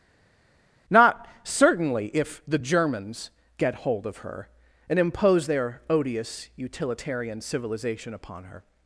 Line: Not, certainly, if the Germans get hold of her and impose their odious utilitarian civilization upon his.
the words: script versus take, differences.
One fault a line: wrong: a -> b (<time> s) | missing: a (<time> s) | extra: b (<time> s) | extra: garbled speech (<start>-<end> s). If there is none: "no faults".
wrong: his -> her (8.5 s)